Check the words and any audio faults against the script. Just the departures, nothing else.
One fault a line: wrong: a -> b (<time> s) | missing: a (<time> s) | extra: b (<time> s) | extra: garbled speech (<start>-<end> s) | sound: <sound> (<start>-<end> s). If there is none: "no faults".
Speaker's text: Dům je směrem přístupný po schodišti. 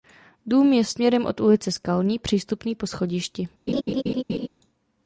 extra: od ulice Skalní (1.2 s)
sound: laugh (3.7-4.5 s)